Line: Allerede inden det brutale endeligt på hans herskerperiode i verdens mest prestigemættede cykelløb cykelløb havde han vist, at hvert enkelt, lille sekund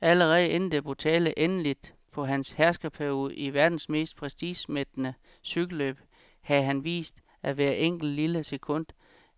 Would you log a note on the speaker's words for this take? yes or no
yes